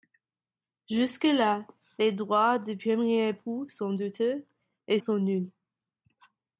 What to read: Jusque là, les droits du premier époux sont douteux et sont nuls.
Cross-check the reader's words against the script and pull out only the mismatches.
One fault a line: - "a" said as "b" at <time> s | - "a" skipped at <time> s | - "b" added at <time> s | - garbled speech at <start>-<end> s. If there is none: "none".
none